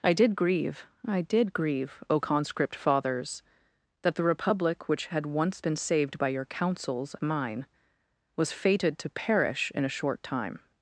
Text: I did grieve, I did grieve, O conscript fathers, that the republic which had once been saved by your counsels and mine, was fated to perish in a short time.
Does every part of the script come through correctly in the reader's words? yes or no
no